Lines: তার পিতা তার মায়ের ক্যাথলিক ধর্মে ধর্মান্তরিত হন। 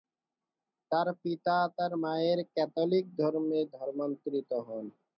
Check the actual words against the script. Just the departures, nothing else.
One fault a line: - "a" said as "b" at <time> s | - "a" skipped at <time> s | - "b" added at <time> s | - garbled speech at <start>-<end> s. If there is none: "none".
none